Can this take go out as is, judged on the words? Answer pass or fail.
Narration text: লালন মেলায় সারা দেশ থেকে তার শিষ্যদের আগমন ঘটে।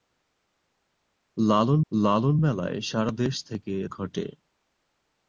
fail